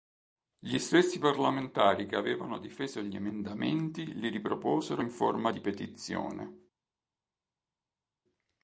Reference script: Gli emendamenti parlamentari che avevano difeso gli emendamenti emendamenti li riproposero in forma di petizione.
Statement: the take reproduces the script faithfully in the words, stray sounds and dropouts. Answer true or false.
false